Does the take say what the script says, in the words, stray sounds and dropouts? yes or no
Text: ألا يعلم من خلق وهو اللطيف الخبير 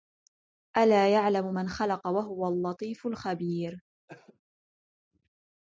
no